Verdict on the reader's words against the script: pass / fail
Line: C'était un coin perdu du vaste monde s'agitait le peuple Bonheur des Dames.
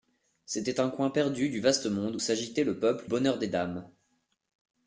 pass